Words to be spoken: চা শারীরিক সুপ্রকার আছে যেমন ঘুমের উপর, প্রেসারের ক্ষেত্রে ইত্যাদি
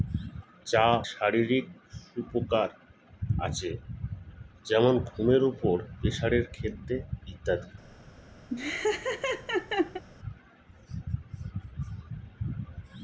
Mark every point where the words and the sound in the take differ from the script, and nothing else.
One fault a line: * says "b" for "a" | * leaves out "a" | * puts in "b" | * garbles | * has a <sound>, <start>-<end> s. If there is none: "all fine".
* has a laugh, 8.5-10.0 s